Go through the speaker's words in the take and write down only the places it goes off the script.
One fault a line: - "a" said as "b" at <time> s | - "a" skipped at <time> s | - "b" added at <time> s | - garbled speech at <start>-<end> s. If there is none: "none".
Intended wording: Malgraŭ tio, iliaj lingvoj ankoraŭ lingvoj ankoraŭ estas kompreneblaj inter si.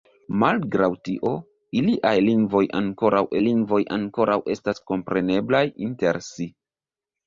none